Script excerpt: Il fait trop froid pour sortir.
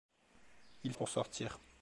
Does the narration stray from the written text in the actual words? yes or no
yes